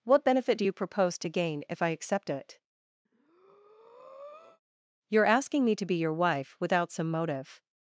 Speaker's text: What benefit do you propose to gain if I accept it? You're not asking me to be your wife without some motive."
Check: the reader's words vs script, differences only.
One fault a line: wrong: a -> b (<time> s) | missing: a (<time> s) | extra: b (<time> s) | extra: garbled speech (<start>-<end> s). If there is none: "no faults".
missing: not (5.2 s)